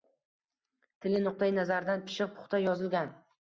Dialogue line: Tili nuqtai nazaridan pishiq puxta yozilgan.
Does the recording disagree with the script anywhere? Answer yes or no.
no